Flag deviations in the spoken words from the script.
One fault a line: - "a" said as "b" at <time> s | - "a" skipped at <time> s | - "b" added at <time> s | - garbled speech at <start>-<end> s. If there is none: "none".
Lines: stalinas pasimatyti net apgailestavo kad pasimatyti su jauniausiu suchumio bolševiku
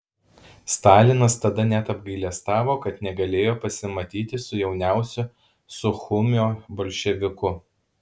- "pasimatyti" said as "tada" at 1.4 s
- "negalėjo" added at 3.1 s